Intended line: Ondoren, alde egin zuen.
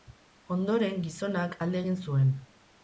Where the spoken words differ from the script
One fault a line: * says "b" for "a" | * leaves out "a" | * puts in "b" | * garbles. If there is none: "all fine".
* puts in "gizonak"